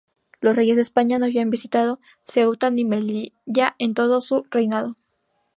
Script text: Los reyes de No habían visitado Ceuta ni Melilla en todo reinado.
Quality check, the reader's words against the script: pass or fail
fail